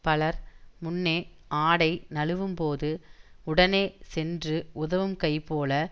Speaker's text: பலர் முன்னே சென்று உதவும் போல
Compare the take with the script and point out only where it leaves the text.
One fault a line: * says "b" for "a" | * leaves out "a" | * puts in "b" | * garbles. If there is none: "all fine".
* puts in "ஆடை நழுவும்போது உடனே"
* puts in "கை"